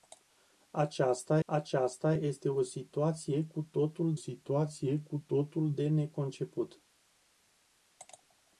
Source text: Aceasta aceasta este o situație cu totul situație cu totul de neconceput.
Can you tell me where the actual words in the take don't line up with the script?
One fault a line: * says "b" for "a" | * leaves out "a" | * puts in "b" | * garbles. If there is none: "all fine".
all fine